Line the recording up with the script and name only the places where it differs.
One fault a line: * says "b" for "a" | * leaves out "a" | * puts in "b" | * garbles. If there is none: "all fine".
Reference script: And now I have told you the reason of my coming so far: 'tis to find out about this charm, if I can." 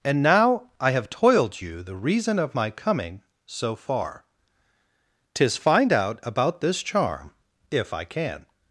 * says "toiled" for "told"
* leaves out "to"